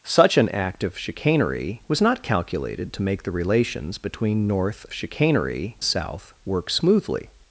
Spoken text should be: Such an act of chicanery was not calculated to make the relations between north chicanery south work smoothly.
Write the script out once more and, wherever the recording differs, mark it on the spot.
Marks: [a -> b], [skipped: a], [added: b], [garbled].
Such an act of chicanery was not calculated to make the relations between north chicanery south work smoothly.